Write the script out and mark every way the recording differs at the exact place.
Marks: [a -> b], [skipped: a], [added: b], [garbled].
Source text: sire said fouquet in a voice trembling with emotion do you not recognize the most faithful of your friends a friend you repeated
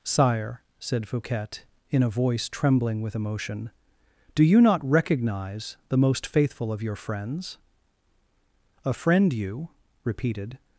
sire said fouquet in a voice trembling with emotion do you not recognize the most faithful of your friends a friend you repeated